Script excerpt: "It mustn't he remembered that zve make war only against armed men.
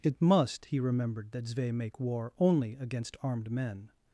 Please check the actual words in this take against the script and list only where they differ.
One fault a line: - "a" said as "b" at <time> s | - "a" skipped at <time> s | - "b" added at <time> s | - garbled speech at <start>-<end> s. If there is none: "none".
- "mustn't" said as "must" at 0.2 s